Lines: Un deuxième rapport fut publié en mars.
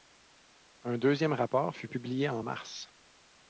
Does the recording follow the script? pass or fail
pass